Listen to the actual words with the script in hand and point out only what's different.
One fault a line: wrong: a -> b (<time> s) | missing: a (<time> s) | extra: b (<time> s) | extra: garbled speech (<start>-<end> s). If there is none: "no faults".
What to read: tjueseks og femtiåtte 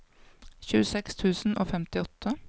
extra: tusen (1.1 s)